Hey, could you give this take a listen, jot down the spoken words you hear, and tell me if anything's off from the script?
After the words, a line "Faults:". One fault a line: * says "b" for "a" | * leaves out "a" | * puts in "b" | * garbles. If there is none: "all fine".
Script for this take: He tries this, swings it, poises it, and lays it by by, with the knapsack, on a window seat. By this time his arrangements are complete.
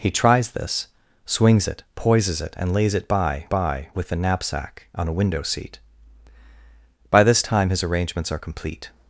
He tries this, swings it, poises it, and lays it by by, with the knapsack, on a window seat. By this time his arrangements are complete.
Faults:
all fine